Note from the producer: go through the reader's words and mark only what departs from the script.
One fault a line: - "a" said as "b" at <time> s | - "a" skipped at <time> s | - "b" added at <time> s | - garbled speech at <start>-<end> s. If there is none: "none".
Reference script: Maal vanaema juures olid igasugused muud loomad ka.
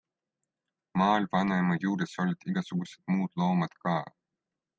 none